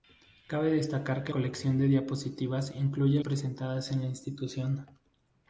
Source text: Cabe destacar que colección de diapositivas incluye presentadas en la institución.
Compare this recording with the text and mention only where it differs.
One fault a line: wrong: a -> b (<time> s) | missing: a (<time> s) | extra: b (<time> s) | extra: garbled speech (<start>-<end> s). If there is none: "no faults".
no faults